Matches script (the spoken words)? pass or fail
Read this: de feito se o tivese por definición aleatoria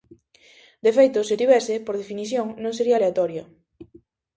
fail